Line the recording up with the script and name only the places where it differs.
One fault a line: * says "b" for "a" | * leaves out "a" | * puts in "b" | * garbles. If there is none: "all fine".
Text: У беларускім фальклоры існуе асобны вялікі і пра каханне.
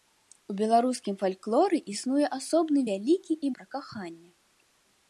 all fine